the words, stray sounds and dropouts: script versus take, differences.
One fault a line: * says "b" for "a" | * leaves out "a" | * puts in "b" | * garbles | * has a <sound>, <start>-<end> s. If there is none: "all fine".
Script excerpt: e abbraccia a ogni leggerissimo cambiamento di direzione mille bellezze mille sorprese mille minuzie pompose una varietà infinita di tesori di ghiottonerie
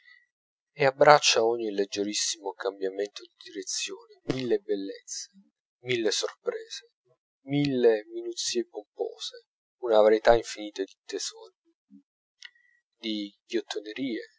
all fine